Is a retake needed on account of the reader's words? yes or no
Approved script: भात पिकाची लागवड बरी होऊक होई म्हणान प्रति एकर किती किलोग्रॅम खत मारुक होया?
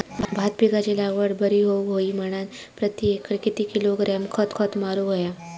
yes